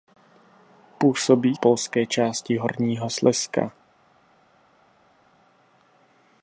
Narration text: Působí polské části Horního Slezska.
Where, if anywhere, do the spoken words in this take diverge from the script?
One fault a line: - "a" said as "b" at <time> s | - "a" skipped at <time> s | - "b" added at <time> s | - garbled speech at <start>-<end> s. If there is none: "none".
none